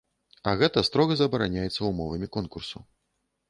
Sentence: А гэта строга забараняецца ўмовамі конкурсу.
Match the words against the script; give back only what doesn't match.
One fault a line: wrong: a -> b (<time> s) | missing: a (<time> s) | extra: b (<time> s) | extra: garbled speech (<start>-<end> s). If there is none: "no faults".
no faults